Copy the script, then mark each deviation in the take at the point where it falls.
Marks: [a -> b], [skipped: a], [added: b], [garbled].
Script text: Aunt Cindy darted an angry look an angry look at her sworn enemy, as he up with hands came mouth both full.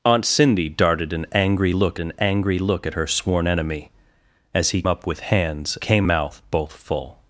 Aunt Cindy darted an angry look an angry look at her sworn enemy, as he up with hands came mouth both full.